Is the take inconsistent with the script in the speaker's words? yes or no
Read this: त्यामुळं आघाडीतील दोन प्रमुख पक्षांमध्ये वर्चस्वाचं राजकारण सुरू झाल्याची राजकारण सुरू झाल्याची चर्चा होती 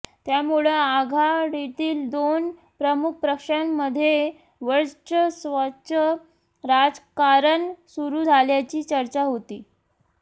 yes